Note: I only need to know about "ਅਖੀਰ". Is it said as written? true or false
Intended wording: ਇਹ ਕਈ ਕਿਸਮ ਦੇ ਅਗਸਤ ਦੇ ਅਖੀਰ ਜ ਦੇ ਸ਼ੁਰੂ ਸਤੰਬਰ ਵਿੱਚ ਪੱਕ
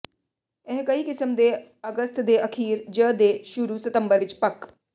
true